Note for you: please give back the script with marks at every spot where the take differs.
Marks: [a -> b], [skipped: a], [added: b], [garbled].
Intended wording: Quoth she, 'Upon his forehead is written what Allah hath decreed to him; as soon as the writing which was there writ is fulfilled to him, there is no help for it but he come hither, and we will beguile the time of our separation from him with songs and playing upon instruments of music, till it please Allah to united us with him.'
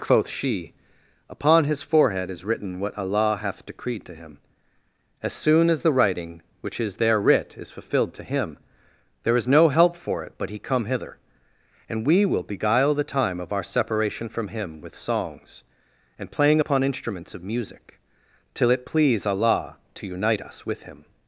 Quoth she, 'Upon his forehead is written what Allah hath decreed to him; as soon as the writing which [was -> is] there writ is fulfilled to him, there is no help for it but he come hither, and we will beguile the time of our separation from him with songs and playing upon instruments of music, till it please Allah to [united -> unite] us with him.'